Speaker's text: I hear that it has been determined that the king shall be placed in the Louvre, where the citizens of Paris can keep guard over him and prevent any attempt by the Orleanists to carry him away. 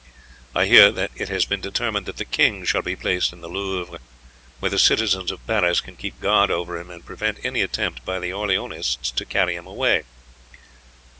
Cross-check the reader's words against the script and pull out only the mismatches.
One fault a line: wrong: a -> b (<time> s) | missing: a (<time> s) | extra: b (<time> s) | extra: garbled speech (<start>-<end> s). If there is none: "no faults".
no faults